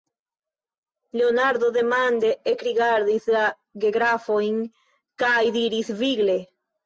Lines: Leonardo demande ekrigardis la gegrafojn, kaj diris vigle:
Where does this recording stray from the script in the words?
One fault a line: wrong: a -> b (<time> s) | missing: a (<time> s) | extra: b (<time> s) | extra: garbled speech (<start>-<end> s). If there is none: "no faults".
no faults